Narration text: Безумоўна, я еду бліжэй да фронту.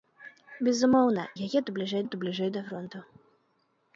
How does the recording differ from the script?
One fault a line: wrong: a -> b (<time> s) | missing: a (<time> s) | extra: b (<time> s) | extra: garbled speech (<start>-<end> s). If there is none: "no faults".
extra: еду бліжэй (2.1 s)